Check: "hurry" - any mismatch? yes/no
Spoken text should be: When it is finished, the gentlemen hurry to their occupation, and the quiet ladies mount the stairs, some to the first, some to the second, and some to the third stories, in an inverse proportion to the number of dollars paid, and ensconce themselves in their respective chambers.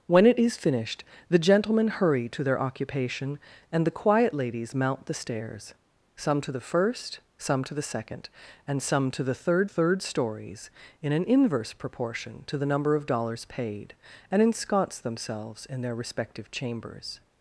no